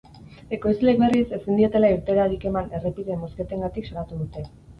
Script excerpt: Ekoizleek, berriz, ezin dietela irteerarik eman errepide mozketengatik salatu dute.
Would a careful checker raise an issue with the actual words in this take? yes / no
no